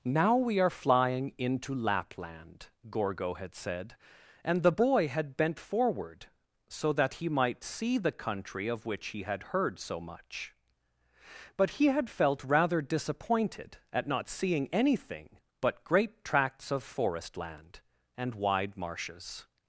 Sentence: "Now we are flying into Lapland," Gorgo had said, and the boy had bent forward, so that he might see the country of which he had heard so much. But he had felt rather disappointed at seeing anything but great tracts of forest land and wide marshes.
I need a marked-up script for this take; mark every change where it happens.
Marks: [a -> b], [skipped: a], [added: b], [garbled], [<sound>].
"Now we are flying into Lapland," Gorgo had said, and the boy had bent forward, so that he might see the country of which he had heard so much. But he had felt rather disappointed at [added: not] seeing anything but great tracts of forest land and wide marshes.